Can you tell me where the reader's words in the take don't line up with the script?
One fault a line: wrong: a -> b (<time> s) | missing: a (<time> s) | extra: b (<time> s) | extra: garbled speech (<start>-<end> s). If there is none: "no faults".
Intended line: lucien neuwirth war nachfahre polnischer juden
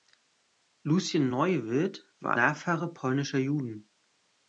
no faults